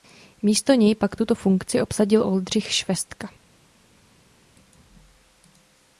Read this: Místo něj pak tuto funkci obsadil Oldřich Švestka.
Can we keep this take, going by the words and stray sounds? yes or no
yes